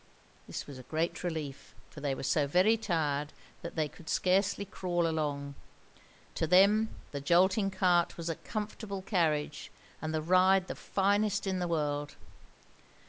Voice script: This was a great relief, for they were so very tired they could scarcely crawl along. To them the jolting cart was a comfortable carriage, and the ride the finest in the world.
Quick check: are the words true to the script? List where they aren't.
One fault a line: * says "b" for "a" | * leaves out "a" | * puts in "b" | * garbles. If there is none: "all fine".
* puts in "that"